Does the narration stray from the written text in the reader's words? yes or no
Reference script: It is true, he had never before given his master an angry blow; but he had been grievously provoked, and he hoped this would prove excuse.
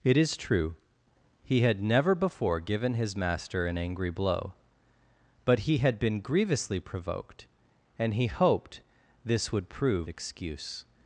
no